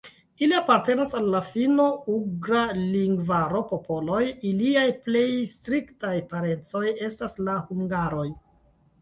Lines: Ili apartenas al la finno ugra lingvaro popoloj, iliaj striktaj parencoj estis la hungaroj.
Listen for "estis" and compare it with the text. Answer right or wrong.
wrong